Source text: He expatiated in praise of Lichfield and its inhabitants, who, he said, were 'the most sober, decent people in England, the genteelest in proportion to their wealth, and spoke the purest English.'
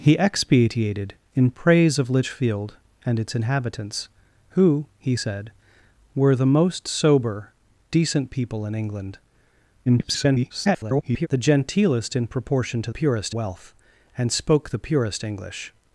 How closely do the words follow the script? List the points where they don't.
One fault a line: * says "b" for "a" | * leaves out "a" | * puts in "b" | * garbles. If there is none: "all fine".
* garbles
* says "purest" for "their"